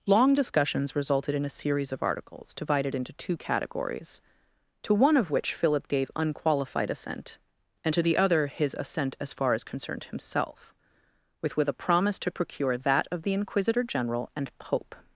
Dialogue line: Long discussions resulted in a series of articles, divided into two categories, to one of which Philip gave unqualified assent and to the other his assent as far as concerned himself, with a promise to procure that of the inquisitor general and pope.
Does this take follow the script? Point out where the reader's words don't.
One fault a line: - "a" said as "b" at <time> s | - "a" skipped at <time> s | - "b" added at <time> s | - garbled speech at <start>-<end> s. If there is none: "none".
- "with" added at 11.6 s